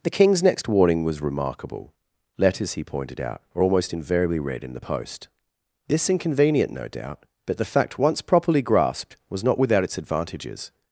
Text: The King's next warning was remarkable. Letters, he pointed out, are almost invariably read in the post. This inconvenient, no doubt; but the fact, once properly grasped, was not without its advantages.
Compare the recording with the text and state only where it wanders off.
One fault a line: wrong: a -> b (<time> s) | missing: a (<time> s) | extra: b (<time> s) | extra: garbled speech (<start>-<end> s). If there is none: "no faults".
no faults